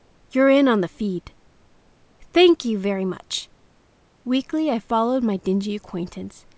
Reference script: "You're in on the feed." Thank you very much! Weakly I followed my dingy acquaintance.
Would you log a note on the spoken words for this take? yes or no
no